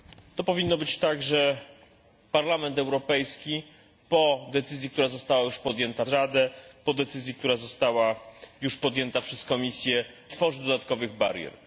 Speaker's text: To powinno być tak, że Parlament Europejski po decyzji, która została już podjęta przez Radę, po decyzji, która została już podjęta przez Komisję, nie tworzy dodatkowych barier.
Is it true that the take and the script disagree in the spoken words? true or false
true